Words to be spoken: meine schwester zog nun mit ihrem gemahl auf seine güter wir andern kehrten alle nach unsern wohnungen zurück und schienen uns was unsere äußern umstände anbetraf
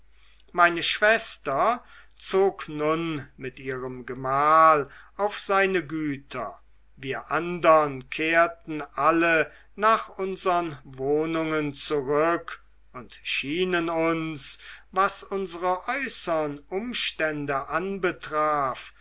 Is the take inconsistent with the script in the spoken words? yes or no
no